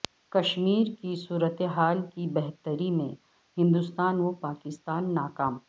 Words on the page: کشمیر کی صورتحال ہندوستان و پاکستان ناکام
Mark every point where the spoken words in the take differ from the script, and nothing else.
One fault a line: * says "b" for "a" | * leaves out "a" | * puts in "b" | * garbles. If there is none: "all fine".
* puts in "کی بہتری میں"